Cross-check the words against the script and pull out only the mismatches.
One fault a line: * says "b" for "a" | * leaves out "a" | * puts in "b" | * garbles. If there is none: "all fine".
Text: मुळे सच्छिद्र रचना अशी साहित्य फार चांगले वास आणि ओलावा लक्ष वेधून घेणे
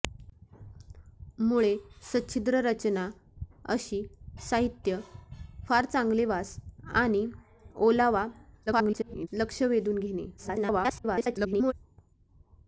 * garbles
* garbles